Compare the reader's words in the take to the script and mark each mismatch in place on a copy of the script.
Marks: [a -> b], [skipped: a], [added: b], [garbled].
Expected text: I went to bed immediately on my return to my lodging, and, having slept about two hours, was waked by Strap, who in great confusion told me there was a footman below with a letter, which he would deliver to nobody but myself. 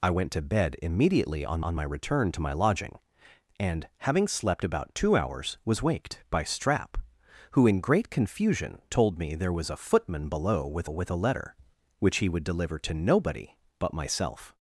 I went to bed immediately on [added: on] my return to my lodging, and, having slept about two hours, was waked by Strap, who in great confusion told me there was a footman below with [added: with] a letter, which he would deliver to nobody but myself.